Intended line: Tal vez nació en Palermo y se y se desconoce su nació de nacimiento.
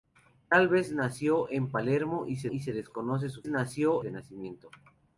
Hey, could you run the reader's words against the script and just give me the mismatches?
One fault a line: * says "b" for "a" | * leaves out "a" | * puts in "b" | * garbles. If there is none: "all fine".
all fine